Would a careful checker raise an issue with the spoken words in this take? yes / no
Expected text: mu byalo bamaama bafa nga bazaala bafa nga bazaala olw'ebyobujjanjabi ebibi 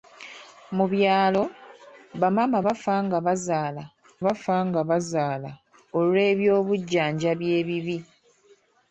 no